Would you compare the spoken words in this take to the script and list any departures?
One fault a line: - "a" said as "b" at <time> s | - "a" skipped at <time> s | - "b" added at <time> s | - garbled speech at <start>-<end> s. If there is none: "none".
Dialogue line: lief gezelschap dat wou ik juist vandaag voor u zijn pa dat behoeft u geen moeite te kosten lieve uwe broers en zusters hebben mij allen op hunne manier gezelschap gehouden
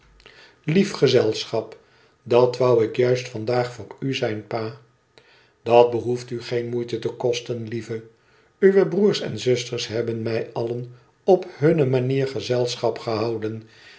none